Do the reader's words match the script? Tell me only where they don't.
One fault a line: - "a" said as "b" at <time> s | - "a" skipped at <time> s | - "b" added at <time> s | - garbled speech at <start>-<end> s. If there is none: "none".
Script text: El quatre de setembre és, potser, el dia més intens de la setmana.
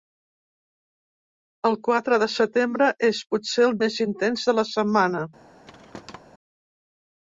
- "dia" skipped at 3.8 s